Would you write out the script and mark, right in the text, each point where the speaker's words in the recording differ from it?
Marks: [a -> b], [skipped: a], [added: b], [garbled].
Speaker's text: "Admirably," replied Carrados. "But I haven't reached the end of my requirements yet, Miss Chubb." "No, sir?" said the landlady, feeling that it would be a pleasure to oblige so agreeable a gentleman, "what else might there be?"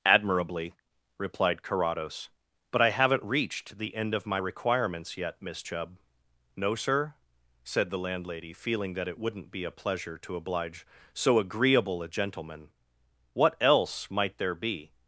"Admirably," replied Carrados. "But I haven't reached the end of my requirements yet, Miss Chubb." "No, sir?" said the landlady, feeling that it [would -> wouldn't] be a pleasure to oblige so agreeable a gentleman, "what else might there be?"